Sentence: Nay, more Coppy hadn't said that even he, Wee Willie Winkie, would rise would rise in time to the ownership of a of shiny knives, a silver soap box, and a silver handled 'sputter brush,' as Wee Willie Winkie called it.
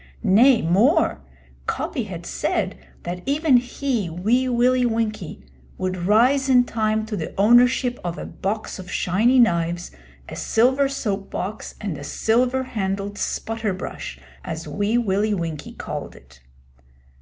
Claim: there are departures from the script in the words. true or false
true